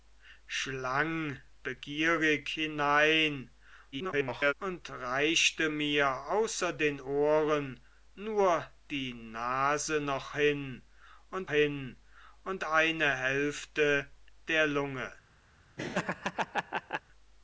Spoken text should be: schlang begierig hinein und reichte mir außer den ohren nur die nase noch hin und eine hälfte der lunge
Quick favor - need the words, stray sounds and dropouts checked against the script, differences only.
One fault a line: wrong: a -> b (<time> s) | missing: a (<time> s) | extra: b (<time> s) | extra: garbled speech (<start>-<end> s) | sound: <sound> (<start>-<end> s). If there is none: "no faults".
extra: garbled speech (3.9-4.5 s)
extra: hin und (11.5 s)
sound: laugh (15.8-17.0 s)